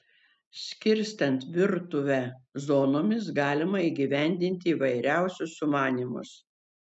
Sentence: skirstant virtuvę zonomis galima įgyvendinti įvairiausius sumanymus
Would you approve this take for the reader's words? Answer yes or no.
yes